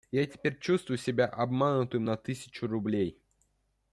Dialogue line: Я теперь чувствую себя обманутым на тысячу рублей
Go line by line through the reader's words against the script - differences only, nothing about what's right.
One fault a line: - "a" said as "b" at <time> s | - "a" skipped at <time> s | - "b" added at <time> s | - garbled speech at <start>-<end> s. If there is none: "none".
none